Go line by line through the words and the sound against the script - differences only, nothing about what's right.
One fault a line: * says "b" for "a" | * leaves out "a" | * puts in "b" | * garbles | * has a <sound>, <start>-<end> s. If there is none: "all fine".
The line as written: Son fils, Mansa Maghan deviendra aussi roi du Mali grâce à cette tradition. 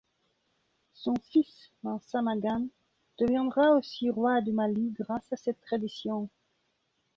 all fine